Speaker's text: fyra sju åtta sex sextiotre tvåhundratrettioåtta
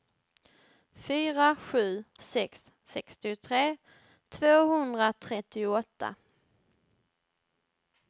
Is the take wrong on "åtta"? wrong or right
wrong